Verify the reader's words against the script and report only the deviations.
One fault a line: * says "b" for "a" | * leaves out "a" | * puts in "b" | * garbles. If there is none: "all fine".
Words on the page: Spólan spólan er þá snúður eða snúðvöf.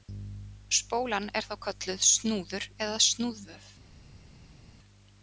* leaves out "spólan"
* puts in "kölluð"